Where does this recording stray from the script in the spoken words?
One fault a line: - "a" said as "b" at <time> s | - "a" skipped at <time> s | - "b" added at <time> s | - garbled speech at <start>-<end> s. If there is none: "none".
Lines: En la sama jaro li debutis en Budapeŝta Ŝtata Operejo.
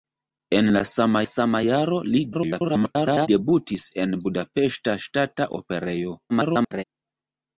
- "sama" added at 1.3 s
- garbled speech at 2.3-3.3 s
- garbled speech at 6.3-6.8 s